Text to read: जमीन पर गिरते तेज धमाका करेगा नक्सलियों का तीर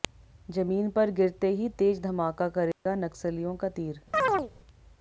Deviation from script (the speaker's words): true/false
true